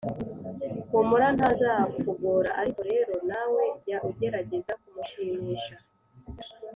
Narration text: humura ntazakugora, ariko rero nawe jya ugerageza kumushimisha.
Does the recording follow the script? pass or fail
pass